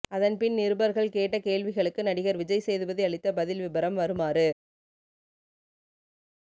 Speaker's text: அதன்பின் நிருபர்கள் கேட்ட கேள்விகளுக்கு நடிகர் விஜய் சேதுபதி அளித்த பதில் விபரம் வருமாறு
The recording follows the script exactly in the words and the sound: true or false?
true